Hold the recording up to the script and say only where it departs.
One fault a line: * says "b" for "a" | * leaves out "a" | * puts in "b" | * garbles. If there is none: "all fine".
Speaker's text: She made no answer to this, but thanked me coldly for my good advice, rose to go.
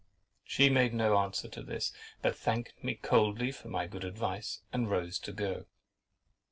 * puts in "and"